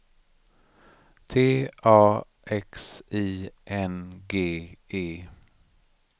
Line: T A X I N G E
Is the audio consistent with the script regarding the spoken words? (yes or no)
yes